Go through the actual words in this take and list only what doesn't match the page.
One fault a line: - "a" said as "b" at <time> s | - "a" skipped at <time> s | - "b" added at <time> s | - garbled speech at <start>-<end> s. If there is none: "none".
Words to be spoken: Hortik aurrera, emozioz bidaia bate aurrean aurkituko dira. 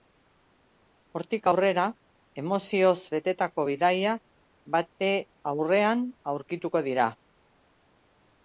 - "betetako" added at 3.1 s